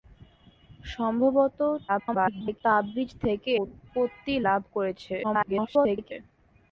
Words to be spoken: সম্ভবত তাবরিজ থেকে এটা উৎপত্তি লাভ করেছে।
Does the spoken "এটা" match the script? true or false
false